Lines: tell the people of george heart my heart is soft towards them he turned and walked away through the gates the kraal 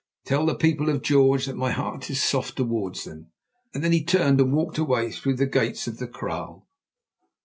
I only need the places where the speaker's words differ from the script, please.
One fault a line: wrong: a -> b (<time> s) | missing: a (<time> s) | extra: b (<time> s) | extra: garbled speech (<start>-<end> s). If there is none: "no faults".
wrong: heart -> that (1.4 s)
extra: then (3.7 s)
extra: of (5.9 s)